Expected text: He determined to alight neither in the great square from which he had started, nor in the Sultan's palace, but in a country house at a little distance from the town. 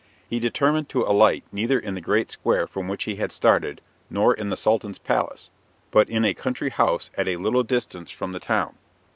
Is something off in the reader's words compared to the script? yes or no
no